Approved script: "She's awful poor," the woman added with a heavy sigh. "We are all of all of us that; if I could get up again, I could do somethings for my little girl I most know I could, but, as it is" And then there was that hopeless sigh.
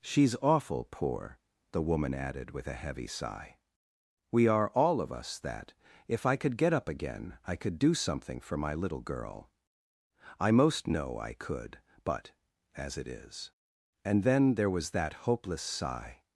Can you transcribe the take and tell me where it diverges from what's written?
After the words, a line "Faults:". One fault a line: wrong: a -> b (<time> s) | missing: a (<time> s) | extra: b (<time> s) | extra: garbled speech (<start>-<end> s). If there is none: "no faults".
"She's awful poor," the woman added with a heavy sigh. "We are all of us that; if I could get up again, I could do something for my little girl I most know I could, but, as it is" And then there was that hopeless sigh.
Faults:
missing: all of (5.1 s)
wrong: somethings -> something (7.9 s)